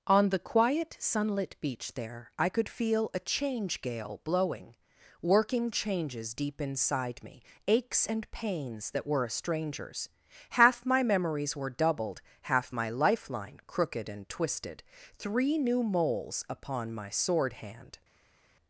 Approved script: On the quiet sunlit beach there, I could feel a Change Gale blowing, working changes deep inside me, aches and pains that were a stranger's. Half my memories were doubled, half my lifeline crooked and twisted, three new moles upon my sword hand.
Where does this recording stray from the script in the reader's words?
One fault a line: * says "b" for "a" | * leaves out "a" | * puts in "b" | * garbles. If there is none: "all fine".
all fine